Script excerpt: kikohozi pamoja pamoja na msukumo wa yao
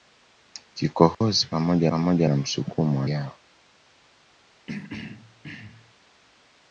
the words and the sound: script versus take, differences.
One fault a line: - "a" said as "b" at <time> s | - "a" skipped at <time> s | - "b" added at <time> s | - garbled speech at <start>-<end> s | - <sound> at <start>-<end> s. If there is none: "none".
- dropout at 1.1-1.2 s
- throat clearing at 4.7-5.9 s